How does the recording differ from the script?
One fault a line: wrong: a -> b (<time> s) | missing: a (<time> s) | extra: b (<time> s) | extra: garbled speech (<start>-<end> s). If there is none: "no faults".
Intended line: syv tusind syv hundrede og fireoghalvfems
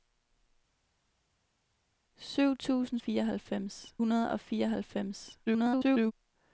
wrong: syv -> fireoghalvfems (3.0 s)
extra: garbled speech (5.5-6.1 s)